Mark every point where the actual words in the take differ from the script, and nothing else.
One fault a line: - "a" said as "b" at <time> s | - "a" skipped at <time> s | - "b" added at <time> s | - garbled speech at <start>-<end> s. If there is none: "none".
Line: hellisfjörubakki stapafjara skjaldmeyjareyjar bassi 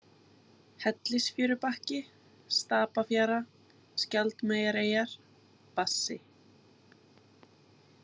none